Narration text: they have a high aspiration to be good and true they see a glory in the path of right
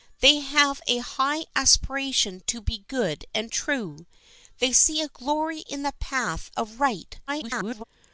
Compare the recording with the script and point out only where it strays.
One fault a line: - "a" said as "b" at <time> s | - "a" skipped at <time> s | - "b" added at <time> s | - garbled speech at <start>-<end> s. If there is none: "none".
- garbled speech at 7.3-7.8 s